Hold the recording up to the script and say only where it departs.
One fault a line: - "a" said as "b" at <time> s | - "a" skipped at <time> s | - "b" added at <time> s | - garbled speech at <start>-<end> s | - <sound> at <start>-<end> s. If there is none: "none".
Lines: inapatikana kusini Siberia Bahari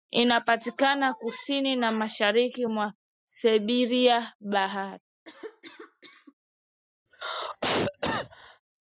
- "na mashariki mwa" added at 1.8 s
- cough at 5.3-6.3 s
- cough at 7.1-8.6 s